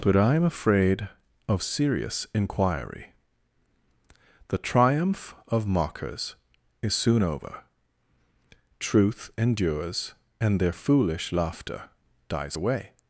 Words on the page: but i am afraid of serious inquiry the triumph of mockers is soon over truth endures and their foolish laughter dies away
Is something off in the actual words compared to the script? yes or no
no